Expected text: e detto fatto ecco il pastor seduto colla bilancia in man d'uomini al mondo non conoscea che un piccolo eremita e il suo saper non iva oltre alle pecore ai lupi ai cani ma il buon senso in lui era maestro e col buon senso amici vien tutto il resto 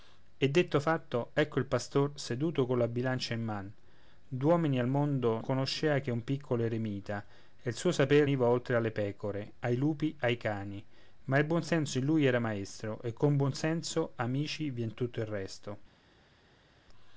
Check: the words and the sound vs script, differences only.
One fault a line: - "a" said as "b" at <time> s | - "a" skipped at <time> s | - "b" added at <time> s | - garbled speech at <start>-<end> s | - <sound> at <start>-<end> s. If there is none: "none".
- "non" skipped at 5.4 s
- "non" skipped at 8.3 s